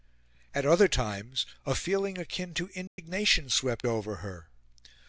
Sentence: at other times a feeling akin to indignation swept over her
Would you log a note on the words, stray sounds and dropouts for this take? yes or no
yes